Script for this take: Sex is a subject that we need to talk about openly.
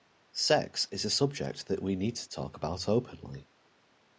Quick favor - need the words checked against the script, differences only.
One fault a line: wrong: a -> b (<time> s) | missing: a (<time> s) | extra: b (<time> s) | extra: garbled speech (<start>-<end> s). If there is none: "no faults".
no faults